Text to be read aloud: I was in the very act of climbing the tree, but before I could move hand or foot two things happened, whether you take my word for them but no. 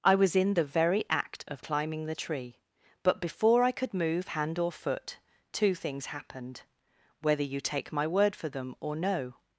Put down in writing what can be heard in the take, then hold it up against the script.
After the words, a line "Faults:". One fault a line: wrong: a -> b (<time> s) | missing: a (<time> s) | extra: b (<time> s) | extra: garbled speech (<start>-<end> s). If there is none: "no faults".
I was in the very act of climbing the tree, but before I could move hand or foot two things happened, whether you take my word for them or no.
Faults:
wrong: but -> or (8.8 s)